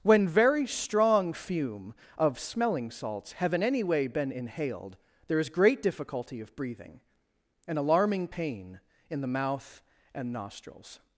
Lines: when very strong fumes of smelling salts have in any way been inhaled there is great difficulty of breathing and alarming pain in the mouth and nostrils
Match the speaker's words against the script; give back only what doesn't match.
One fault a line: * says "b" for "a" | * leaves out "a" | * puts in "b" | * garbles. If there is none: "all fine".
* says "fume" for "fumes"